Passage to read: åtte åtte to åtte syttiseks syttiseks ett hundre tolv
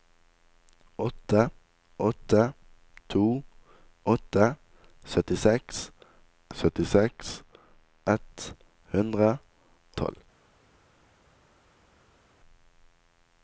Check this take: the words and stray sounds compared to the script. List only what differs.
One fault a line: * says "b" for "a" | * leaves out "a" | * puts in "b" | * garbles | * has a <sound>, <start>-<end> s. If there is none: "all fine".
all fine